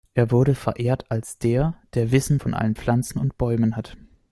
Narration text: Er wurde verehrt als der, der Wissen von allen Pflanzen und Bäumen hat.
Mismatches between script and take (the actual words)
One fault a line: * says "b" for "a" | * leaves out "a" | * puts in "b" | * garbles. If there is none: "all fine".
all fine